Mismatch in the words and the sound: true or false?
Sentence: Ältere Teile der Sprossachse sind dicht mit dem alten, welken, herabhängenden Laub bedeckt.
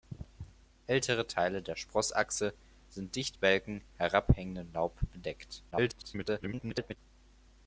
true